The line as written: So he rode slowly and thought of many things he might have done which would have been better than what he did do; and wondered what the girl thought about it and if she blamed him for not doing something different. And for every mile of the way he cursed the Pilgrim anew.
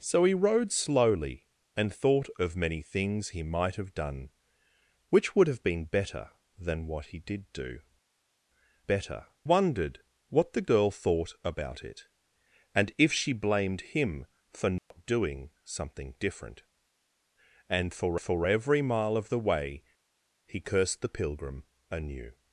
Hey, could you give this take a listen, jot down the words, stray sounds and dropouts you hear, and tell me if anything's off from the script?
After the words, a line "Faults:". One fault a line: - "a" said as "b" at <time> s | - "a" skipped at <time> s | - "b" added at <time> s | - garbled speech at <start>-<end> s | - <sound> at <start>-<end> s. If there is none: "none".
So he rode slowly and thought of many things he might have done which would have been better than what he did do; better wondered what the girl thought about it and if she blamed him for not doing something different. And for for every mile of the way he cursed the Pilgrim anew.
Faults:
- "and" said as "better" at 8.8 s
- dropout at 14.8-14.9 s
- "for" added at 18.2 s